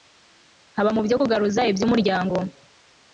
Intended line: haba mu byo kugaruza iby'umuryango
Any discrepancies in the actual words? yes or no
no